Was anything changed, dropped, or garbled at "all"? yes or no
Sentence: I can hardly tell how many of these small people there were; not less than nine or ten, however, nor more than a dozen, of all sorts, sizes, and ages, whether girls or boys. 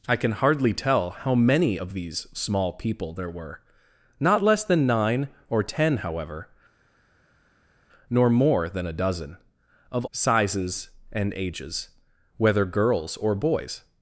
yes